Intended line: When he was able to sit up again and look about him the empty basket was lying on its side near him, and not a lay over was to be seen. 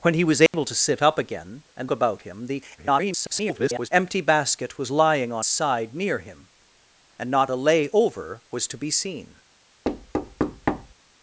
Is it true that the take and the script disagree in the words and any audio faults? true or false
true